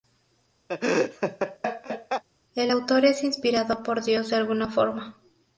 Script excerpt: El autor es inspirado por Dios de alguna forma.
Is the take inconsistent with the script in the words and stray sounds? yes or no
yes